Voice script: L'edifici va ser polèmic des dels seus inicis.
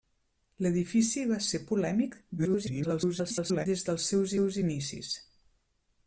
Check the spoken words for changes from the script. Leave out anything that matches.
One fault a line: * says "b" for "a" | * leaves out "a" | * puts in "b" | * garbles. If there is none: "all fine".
* garbles
* puts in "seus"